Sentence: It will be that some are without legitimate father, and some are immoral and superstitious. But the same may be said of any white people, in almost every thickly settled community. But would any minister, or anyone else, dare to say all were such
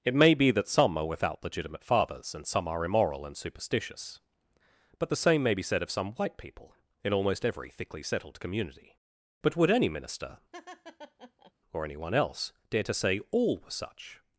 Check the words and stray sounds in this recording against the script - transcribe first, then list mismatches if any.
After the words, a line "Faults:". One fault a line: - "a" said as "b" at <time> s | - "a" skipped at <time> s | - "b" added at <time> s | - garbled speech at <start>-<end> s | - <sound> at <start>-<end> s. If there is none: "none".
It may be that some are without legitimate fathers, and some are immoral and superstitious. But the same may be said of some white people, in almost every thickly settled community. But would any minister, or anyone else, dare to say all were such
Faults:
- "will" said as "may" at 0.1 s
- "father" said as "fathers" at 1.8 s
- "any" said as "some" at 5.9 s
- laugh at 10.5-11.5 s